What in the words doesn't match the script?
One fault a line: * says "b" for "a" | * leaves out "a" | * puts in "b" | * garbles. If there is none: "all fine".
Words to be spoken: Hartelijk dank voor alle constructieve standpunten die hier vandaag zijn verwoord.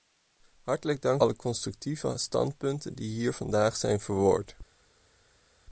* leaves out "voor"